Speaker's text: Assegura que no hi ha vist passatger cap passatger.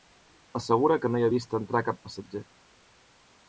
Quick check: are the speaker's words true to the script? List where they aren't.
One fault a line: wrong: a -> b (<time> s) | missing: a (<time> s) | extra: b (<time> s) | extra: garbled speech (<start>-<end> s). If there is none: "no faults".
wrong: passatger -> entrar (1.6 s)